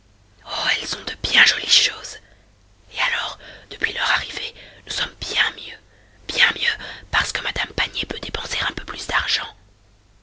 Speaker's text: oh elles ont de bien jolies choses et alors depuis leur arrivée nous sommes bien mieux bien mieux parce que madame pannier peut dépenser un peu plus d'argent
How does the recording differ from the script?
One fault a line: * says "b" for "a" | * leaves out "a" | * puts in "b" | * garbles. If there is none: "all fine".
all fine